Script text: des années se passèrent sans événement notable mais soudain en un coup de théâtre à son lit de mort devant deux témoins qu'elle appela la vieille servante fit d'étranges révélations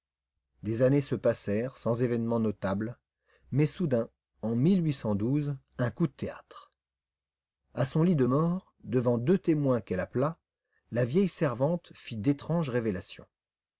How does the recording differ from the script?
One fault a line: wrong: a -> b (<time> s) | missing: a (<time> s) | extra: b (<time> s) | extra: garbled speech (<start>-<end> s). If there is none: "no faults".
no faults